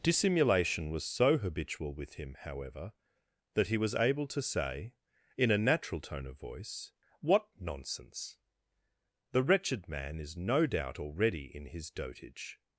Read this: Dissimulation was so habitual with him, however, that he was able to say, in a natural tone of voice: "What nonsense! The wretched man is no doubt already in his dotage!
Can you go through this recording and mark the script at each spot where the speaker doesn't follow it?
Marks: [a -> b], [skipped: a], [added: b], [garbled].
Dissimulation was so habitual with him, however, that he was able to say, in a natural tone of voice: "What nonsense! The wretched man is no doubt already in his dotage!